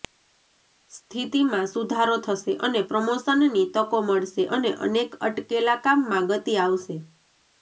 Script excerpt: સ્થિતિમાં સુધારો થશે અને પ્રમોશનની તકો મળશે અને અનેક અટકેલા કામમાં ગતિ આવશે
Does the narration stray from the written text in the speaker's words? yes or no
no